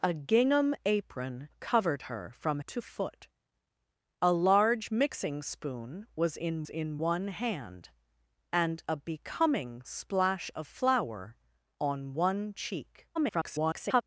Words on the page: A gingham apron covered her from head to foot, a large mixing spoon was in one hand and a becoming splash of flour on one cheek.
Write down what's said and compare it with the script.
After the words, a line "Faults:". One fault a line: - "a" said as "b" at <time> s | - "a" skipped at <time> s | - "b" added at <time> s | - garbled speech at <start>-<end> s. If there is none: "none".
A gingham apron covered her from to foot, a large mixing spoon was in in one hand and a becoming splash of flour on one cheek. [garbled]
Faults:
- "head" skipped at 2.6 s
- "in" added at 6.7 s
- garbled speech at 13.1-14.0 s